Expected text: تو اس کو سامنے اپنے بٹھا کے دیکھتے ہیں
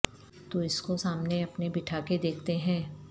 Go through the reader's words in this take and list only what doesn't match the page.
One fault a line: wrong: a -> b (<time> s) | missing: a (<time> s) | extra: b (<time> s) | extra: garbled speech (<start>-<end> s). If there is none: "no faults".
no faults